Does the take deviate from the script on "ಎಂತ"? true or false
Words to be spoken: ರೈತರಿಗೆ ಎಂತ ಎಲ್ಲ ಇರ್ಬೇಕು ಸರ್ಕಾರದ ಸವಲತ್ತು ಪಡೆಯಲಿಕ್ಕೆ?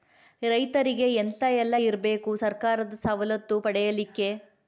false